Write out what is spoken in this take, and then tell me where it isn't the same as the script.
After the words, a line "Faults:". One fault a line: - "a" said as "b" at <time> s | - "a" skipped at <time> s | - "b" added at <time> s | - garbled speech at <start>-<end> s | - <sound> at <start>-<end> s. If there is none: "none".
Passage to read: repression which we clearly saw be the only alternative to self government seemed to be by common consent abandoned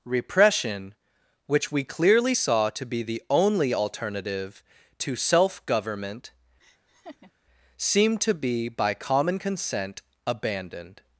repression which we clearly saw to be the only alternative to self government seemed to be by common consent abandoned
Faults:
- "to" added at 2.7 s
- laugh at 6.6-7.3 s